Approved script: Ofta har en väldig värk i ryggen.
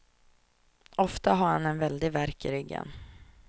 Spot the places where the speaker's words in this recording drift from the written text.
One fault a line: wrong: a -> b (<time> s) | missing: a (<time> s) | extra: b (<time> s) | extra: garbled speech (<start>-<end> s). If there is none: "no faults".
extra: han (1.5 s)